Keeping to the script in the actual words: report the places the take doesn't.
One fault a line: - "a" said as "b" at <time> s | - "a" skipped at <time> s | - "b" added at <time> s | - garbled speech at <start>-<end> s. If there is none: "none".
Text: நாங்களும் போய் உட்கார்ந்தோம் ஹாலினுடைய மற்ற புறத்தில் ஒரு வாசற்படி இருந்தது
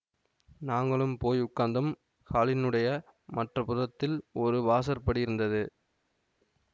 none